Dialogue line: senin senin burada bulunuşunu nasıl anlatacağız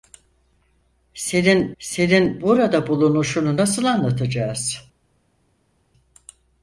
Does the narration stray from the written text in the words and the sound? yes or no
no